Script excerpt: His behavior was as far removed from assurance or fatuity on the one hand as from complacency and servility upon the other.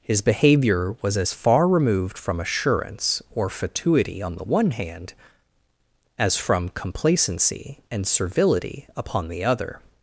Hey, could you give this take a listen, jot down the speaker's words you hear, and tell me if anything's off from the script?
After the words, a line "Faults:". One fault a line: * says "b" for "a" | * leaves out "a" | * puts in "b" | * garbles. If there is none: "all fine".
His behavior was as far removed from assurance or fatuity on the one hand as from complacency and servility upon the other.
Faults:
all fine